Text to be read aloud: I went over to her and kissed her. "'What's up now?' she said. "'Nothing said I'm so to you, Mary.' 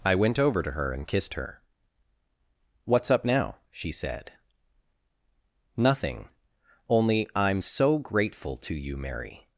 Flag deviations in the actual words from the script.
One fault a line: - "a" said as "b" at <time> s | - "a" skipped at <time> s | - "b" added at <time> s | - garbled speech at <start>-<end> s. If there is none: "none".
- "said" said as "only" at 6.9 s
- "grateful" added at 8.0 s